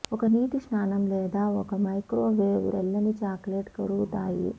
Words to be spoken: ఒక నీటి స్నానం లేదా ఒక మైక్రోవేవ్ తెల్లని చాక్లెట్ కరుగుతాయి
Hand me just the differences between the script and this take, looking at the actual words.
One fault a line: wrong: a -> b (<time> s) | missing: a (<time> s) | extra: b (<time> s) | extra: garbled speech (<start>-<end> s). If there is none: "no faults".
no faults